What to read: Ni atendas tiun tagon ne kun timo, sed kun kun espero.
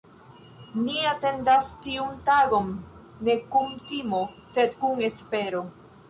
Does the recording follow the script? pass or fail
fail